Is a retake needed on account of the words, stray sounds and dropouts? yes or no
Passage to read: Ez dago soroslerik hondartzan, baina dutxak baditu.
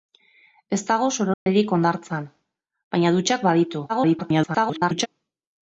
yes